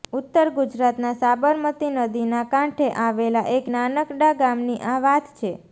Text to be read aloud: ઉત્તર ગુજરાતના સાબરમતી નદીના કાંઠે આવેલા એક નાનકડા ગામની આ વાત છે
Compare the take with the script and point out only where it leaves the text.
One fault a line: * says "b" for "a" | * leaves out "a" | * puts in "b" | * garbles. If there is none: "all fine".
all fine